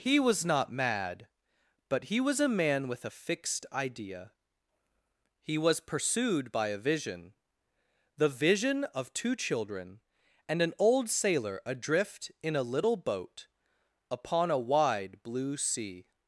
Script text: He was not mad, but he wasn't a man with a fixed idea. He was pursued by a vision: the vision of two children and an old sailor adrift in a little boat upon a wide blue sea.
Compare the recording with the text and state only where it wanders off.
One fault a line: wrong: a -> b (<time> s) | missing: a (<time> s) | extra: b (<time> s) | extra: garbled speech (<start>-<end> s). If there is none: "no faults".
wrong: wasn't -> was (2.2 s)